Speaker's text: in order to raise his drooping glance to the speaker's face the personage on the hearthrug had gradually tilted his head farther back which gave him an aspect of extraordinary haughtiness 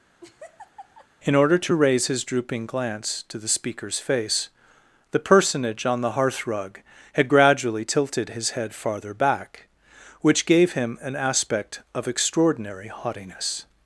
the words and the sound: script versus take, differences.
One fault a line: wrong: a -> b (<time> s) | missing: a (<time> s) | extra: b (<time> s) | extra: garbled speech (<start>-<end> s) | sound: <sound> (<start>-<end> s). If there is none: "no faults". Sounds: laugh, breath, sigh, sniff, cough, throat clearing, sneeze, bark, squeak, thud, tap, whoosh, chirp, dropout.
sound: laugh (0.2-1.1 s)